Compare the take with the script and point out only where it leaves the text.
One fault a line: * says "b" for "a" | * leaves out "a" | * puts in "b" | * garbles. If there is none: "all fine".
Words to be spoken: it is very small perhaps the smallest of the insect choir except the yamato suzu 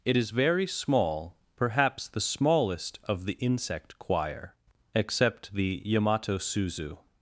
all fine